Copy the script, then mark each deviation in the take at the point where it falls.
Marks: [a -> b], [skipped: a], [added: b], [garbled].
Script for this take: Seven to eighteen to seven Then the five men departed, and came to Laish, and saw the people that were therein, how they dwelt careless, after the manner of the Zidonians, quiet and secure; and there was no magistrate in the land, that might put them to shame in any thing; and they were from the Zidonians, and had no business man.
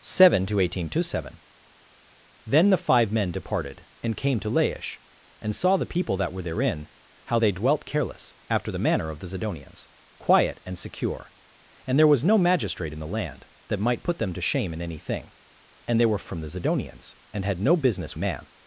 Seven to eighteen to seven Then the five men departed, and came to Laish, and saw the people that were therein, how they dwelt careless, after the manner of the Zidonians, quiet and secure; and there was no magistrate in the land, that might put them to shame in any thing; and they were from the Zidonians, and had no business man.